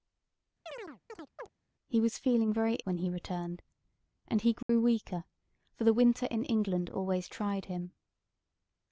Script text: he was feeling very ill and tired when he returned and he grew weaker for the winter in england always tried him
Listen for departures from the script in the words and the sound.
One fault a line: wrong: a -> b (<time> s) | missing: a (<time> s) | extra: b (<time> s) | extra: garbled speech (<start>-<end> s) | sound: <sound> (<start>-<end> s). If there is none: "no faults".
sound: chirp (0.7-1.5 s)
missing: ill and tired (2.8 s)
sound: dropout (4.6-4.7 s)